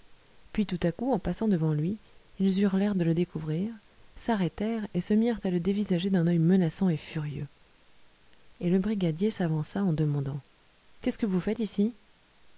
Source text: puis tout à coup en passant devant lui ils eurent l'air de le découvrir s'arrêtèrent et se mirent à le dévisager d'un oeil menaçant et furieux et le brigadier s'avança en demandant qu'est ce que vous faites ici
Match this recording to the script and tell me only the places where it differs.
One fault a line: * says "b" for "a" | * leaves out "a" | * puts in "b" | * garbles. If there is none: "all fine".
all fine